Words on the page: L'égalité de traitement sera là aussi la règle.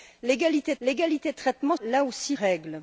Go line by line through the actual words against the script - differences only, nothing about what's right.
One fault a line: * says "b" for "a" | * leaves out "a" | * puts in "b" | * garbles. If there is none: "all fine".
* puts in "l'égalité"
* leaves out "sera"
* leaves out "la"